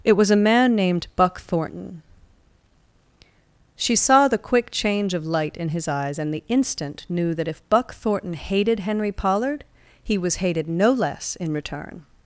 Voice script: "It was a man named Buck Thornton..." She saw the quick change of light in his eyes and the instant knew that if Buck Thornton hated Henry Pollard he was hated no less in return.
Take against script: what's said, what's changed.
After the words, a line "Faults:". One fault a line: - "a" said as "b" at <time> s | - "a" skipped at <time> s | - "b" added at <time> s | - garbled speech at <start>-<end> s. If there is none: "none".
"It was a man named Buck Thornton..." She saw the quick change of light in his eyes and the instant knew that if Buck Thornton hated Henry Pollard he was hated no less in return.
Faults:
none